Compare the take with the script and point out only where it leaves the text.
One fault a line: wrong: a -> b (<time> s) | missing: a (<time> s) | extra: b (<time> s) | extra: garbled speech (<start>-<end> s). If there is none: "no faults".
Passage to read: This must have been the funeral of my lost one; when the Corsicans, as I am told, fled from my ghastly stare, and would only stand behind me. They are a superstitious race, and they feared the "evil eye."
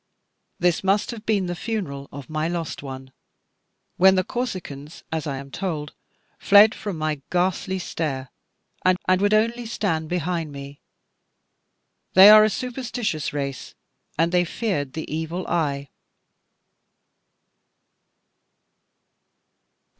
extra: and (9.0 s)